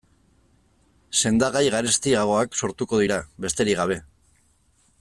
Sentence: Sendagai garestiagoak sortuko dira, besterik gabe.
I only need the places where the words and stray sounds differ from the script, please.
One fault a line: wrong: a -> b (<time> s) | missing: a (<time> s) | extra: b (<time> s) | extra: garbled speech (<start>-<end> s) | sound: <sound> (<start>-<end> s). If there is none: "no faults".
no faults